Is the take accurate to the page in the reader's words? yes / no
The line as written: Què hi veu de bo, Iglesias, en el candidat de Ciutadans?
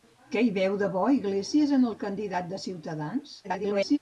no